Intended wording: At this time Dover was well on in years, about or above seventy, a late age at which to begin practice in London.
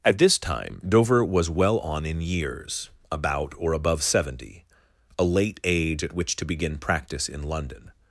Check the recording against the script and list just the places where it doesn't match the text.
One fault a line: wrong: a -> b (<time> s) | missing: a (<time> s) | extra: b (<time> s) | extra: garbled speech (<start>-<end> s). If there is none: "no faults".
no faults